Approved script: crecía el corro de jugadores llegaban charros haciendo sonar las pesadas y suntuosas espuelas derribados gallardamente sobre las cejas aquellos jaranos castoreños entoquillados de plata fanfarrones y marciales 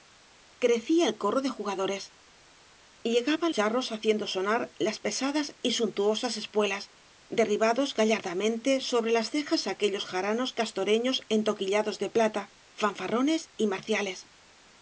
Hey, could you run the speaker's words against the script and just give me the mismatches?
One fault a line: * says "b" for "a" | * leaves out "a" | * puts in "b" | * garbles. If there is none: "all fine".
all fine